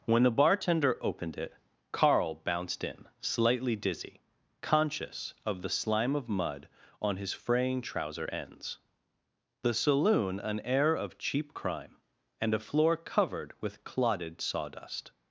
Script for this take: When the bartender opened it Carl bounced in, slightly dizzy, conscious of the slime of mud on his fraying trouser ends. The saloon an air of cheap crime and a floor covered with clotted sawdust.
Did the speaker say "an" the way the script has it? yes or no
yes